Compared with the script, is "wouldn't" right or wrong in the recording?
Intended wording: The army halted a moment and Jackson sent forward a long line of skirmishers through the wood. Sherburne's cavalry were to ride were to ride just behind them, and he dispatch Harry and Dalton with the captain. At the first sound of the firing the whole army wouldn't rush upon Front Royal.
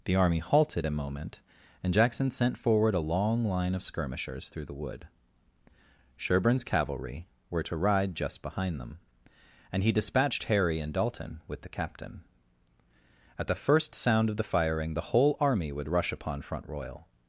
wrong